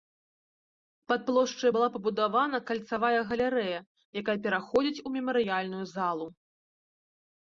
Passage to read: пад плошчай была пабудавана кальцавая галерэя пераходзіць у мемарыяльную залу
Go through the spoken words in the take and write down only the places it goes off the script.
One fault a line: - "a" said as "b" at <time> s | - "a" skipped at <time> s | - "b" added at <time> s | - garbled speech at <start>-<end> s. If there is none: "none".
- "якая" added at 4.2 s